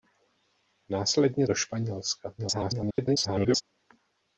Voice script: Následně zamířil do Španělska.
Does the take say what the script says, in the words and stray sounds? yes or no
no